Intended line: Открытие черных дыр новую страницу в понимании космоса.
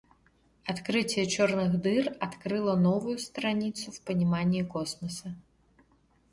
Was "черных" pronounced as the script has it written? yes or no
yes